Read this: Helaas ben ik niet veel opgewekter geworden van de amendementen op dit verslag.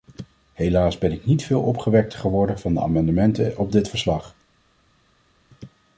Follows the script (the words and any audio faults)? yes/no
yes